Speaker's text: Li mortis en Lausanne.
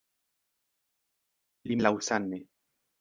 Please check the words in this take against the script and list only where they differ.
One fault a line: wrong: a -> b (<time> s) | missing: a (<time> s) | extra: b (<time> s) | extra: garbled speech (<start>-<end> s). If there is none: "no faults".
missing: mortis (1.8 s)